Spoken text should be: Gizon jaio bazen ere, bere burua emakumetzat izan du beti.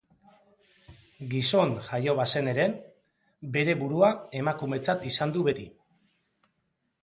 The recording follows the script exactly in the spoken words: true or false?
true